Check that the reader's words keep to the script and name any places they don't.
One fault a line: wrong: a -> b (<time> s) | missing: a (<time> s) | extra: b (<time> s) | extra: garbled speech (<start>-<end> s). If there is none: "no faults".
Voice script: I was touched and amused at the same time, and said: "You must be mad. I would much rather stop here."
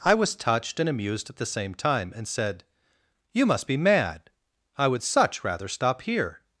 wrong: much -> such (5.0 s)